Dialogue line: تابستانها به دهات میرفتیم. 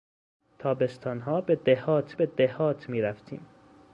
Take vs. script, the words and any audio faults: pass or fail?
fail